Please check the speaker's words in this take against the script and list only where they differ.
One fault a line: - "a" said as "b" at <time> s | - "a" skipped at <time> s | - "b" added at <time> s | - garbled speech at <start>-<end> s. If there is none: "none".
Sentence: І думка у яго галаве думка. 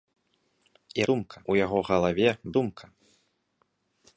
none